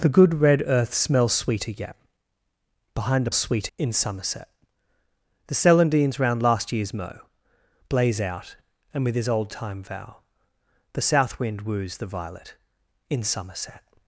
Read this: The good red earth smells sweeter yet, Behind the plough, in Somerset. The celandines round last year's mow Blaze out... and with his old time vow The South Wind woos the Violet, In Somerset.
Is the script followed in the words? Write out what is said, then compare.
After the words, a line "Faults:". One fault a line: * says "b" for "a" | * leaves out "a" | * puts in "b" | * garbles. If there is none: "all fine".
The good red earth smells sweeter yet, Behind the sweeter, in Somerset. The celandines round last year's mow Blaze out... and with his old time vow The South Wind woos the Violet, In Somerset.
Faults:
* says "sweeter" for "plough"